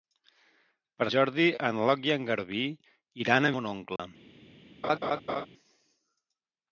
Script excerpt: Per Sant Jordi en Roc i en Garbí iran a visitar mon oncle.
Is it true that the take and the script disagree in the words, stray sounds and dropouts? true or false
true